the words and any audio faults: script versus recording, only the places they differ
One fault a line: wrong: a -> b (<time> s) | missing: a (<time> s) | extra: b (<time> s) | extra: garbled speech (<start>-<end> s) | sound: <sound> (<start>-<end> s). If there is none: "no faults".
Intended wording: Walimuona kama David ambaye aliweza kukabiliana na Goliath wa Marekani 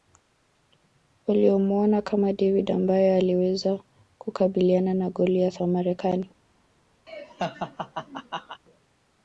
sound: laugh (7.1-8.6 s)